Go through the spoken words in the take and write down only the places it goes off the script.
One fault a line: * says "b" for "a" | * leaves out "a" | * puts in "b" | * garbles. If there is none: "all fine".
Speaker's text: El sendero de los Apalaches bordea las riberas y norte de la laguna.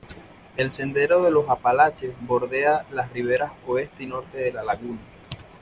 * puts in "oeste"